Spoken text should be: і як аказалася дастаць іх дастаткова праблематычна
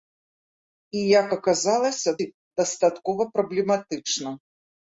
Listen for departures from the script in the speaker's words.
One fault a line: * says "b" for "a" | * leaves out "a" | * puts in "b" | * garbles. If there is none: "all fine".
* leaves out "дастаць"